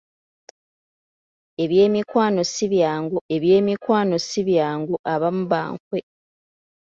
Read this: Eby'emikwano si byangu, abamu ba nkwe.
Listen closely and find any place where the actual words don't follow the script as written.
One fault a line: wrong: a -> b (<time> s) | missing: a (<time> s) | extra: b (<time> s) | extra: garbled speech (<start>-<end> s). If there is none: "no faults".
extra: eby'emikwano si byangu (3.3 s)